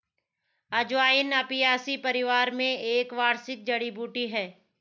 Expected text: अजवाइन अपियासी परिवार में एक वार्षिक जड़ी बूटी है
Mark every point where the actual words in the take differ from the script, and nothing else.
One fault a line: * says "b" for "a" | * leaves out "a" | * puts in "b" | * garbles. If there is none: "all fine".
all fine